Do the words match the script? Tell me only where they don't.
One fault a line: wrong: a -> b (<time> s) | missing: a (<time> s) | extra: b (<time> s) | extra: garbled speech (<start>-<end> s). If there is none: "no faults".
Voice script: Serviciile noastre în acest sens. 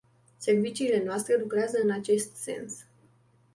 extra: lucrează (1.4 s)